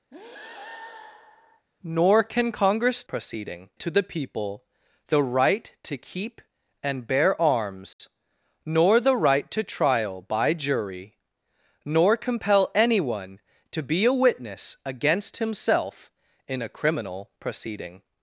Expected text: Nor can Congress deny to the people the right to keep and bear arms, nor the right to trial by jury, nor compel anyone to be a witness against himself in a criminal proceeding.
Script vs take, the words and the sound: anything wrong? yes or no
yes